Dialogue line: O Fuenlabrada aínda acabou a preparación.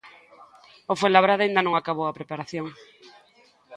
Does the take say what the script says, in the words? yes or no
no